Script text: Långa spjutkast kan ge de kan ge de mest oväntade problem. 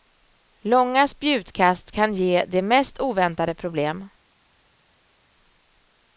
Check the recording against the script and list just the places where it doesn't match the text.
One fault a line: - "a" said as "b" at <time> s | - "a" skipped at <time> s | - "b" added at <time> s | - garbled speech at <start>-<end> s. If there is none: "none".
- "kan ge de" skipped at 2.6 s